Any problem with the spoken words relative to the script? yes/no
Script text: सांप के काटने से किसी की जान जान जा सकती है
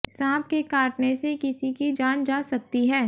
yes